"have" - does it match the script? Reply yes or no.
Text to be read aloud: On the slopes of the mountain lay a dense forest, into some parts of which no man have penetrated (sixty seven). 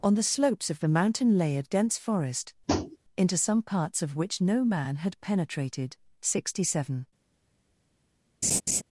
no